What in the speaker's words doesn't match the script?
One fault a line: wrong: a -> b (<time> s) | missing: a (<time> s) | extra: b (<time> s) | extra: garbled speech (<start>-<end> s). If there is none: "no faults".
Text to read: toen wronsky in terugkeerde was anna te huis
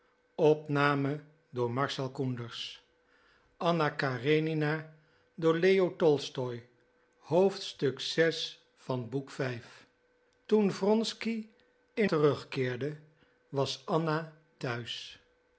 no faults